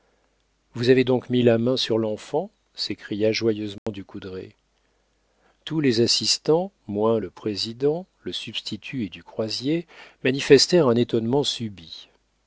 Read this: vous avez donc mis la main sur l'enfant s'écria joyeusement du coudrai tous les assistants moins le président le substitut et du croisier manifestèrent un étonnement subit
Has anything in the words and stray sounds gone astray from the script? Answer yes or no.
yes